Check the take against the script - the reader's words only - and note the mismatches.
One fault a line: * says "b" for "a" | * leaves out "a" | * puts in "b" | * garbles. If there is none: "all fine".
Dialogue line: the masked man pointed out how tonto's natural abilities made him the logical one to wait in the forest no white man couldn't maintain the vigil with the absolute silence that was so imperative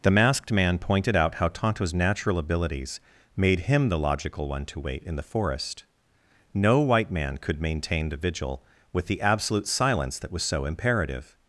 * says "could" for "couldn't"